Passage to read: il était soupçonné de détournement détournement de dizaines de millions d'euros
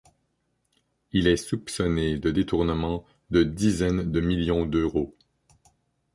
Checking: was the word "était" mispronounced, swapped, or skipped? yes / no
yes